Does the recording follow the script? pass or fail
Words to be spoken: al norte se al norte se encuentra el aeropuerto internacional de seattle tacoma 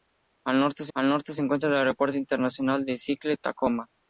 pass